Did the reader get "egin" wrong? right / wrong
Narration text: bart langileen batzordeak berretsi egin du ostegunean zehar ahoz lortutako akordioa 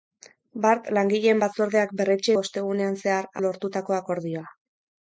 wrong